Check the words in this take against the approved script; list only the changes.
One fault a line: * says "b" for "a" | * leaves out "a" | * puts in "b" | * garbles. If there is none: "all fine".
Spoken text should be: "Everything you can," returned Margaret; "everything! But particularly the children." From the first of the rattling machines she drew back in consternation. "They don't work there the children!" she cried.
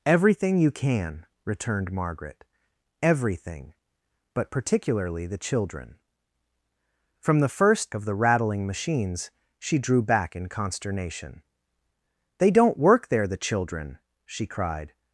all fine